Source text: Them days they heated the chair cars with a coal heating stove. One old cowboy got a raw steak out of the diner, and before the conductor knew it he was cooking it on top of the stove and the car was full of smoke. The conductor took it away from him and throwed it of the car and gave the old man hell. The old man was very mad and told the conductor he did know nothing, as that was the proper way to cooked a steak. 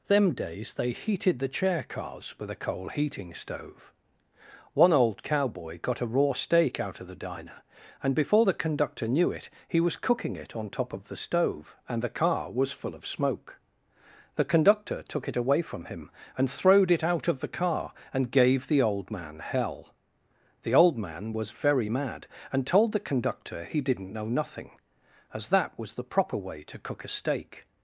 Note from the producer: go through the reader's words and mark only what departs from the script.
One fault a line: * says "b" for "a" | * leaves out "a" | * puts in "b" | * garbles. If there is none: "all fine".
* puts in "out"
* says "didn't" for "did"
* says "cook" for "cooked"